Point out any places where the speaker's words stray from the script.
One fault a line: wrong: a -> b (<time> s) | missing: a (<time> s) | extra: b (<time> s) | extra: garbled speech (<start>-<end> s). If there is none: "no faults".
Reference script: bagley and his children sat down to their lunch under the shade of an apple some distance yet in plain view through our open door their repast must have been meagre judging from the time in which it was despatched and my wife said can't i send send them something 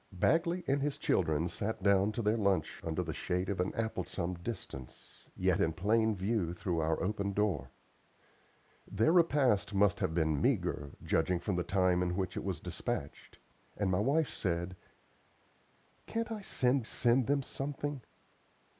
no faults